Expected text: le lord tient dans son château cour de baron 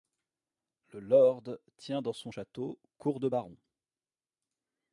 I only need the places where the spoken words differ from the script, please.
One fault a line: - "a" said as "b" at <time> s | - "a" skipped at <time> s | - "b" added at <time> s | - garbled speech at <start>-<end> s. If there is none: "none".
none